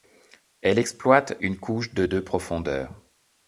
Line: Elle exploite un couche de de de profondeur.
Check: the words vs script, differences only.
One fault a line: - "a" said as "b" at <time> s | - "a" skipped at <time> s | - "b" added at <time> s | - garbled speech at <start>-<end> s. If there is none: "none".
- "un" said as "une" at 1.4 s
- "de" skipped at 2.2 s